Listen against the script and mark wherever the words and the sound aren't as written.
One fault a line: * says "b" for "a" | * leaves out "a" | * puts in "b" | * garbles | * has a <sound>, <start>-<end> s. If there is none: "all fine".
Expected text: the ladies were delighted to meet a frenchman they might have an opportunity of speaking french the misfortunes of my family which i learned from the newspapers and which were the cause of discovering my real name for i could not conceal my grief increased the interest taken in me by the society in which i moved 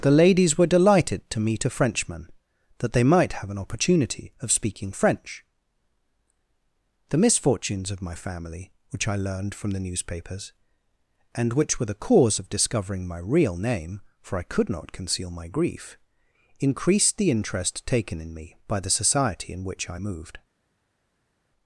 * puts in "that"